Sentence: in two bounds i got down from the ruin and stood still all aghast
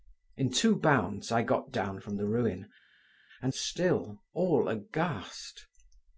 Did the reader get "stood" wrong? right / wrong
wrong